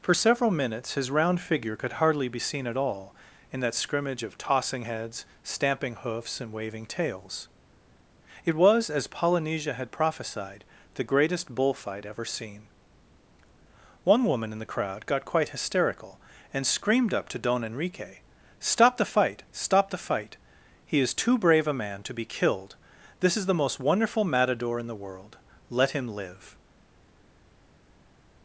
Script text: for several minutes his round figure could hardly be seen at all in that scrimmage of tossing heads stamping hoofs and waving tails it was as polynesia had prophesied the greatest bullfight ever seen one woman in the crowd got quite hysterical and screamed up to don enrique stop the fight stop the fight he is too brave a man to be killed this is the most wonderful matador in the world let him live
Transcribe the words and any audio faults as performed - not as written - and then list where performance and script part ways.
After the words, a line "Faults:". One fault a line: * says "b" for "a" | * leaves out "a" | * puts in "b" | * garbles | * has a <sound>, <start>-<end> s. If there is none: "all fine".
for several minutes his round figure could hardly be seen at all in that scrimmage of tossing heads stamping hoofs and waving tails it was as polynesia had prophesied the greatest bullfight ever seen one woman in the crowd got quite hysterical and screamed up to don enrique stop the fight stop the fight he is too brave a man to be killed this is the most wonderful matador in the world let him live
Faults:
all fine